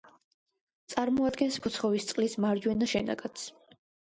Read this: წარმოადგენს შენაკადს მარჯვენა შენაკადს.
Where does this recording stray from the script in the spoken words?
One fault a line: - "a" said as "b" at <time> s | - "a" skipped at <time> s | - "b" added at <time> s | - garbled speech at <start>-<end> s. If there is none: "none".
- "შენაკადს" said as "ფოცხოვისწყლის" at 1.6 s